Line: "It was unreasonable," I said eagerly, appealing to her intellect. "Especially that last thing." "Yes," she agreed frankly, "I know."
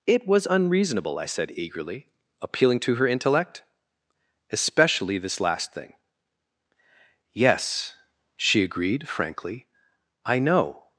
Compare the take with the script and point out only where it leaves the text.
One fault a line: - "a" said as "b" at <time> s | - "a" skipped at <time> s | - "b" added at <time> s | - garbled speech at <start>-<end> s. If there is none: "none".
- "that" said as "this" at 5.2 s